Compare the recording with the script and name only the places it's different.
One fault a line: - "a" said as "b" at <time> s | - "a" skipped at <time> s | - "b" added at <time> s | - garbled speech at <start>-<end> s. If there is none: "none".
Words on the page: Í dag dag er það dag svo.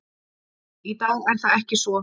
- "dag" skipped at 1.3 s
- "dag" said as "ekki" at 1.6 s